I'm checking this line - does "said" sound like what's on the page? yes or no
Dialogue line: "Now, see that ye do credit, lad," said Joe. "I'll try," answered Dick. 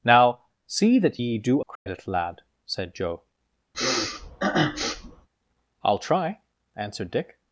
yes